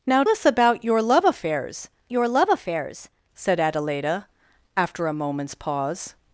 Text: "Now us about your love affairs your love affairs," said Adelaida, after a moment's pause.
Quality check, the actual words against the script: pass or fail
pass